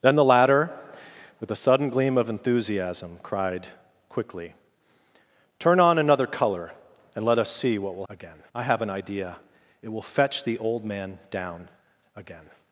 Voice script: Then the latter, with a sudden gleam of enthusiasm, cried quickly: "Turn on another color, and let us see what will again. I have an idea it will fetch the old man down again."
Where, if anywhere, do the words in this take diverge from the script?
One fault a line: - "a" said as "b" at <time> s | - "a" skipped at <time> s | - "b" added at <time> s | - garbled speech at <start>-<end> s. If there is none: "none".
none